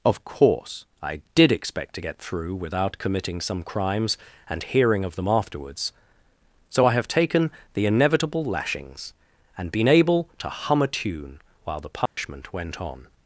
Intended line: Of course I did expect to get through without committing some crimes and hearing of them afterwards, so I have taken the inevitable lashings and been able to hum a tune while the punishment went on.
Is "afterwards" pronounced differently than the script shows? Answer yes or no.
no